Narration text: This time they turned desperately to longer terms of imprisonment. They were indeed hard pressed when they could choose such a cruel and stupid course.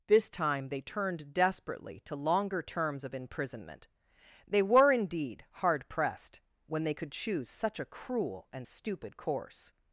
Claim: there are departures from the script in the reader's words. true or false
false